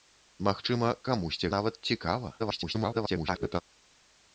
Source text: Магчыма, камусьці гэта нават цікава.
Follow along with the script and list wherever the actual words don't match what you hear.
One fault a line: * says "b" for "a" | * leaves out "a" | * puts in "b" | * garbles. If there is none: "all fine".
* leaves out "гэта"
* garbles